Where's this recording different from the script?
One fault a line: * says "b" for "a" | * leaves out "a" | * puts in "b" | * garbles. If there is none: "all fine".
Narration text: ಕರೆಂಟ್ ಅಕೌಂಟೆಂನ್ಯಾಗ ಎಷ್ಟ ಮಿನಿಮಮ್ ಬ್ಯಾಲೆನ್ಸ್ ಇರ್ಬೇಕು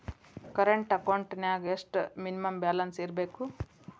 all fine